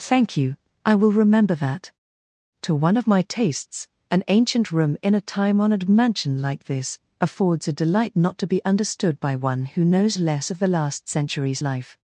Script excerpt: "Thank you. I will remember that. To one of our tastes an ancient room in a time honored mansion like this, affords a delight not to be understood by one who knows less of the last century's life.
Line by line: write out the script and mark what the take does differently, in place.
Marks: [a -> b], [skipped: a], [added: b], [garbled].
"Thank you. I will remember that. To one of [our -> my] tastes an ancient room in a time honored mansion like this, affords a delight not to be understood by one who knows less of the last century's life.